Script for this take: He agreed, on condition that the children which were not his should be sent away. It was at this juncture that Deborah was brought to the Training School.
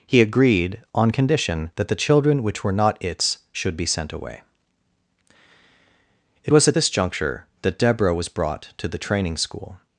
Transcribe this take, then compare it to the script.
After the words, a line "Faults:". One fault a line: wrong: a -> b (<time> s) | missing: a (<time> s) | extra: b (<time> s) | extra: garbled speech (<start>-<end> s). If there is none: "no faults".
He agreed, on condition that the children which were not its should be sent away. It was at this juncture that Deborah was brought to the Training School.
Faults:
wrong: his -> its (3.0 s)